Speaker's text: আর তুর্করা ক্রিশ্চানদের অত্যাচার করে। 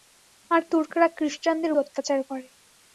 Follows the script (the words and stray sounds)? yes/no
yes